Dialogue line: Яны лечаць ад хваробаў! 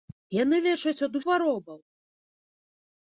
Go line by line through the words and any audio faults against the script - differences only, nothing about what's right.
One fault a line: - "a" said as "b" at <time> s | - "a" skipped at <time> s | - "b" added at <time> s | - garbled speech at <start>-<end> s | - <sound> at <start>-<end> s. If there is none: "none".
none